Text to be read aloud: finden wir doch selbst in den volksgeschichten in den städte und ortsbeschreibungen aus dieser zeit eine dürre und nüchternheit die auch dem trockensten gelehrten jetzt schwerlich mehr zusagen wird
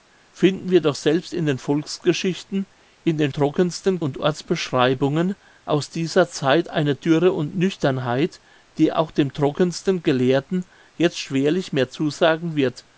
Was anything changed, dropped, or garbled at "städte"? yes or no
yes